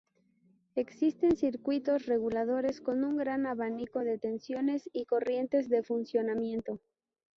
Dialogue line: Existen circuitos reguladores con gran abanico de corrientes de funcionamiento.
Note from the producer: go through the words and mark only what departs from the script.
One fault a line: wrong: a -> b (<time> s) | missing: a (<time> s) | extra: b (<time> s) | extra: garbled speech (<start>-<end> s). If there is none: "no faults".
extra: un (3.0 s)
extra: tensiones y (4.2 s)